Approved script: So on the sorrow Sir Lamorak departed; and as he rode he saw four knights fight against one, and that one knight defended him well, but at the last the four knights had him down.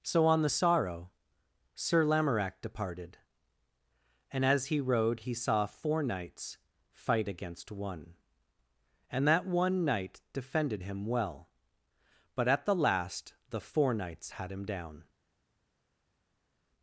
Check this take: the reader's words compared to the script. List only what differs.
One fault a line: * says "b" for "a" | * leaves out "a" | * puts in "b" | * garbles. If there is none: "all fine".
all fine